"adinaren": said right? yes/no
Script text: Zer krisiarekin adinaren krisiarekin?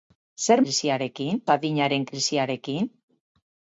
yes